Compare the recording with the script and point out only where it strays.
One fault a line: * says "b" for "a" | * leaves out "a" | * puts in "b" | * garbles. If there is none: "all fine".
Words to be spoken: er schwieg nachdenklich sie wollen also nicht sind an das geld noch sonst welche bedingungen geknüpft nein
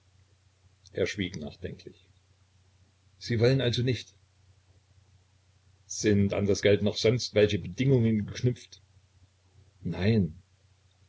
all fine